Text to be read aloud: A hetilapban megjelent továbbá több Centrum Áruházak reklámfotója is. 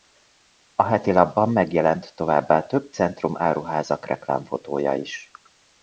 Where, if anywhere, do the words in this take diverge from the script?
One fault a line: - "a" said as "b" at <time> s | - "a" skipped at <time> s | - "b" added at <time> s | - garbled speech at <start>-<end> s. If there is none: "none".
none